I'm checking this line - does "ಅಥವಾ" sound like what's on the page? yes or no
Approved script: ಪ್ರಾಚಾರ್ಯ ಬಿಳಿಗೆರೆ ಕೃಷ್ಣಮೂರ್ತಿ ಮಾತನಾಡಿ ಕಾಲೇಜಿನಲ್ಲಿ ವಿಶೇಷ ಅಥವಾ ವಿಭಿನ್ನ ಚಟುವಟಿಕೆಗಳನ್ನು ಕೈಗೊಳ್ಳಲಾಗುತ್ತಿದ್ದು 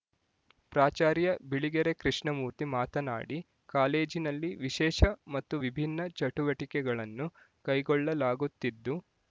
no